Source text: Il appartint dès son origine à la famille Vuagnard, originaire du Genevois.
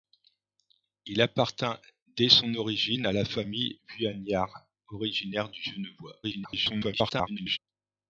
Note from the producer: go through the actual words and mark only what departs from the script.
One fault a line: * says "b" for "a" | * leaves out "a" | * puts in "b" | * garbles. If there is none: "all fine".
* garbles